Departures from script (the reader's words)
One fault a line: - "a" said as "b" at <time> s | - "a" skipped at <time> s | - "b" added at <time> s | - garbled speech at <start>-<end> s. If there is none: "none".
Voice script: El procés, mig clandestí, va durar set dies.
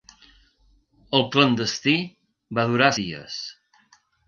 - "procés mig" skipped at 1.2 s
- "set" skipped at 2.9 s